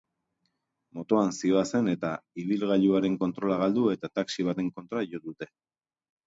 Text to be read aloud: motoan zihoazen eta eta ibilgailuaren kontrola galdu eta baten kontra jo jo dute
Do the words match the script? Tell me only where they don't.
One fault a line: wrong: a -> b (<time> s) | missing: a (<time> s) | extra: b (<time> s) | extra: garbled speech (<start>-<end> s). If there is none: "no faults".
missing: eta (2.1 s)
extra: taxi (4.2 s)
missing: jo (5.2 s)